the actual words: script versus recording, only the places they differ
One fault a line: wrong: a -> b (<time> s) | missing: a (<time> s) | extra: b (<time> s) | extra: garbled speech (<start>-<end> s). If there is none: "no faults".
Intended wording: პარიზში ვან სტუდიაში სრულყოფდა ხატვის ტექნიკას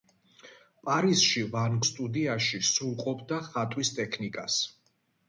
no faults